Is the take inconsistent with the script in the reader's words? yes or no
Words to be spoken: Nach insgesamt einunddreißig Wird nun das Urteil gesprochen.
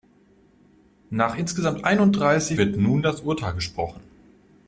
no